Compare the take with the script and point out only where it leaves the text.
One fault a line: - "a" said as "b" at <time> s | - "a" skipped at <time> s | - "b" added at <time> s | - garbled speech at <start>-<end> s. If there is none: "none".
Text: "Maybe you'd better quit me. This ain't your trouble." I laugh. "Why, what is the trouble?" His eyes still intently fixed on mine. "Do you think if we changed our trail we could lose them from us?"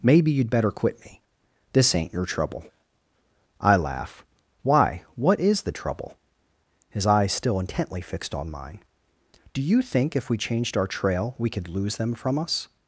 none